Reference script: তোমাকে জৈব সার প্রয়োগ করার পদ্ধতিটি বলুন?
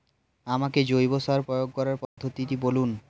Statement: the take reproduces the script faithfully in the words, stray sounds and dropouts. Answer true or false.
false